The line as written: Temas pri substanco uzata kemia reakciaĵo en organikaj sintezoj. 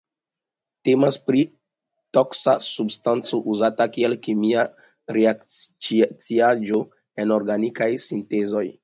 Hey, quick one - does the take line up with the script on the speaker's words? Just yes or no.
no